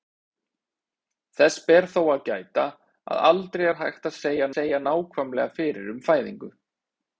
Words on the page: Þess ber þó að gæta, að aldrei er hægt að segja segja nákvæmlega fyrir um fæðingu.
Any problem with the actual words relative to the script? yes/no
no